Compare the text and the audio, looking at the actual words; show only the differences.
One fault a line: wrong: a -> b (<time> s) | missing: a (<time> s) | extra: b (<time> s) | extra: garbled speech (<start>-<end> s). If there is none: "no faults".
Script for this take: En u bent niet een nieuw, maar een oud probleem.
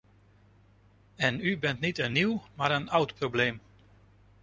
no faults